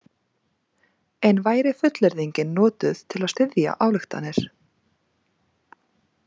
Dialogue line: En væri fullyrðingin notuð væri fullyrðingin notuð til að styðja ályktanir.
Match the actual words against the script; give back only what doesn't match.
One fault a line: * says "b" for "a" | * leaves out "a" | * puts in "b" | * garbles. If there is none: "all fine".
* leaves out "væri fullyrðingin notuð"